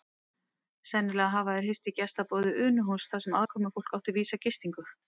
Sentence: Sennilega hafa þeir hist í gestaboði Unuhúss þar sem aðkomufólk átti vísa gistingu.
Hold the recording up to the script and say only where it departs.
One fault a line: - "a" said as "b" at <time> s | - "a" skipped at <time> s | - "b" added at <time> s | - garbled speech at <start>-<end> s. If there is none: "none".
none